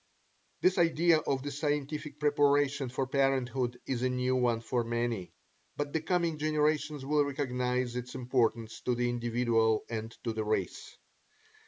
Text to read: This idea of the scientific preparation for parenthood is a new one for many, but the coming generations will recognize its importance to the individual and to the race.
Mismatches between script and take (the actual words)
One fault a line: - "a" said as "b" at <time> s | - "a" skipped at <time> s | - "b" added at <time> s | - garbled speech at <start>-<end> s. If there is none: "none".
none